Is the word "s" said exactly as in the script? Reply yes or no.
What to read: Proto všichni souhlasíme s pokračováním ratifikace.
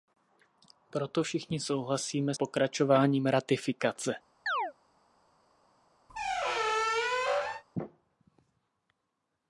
no